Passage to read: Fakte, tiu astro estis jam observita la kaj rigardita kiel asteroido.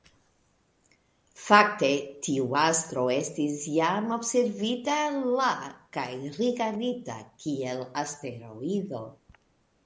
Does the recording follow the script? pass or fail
pass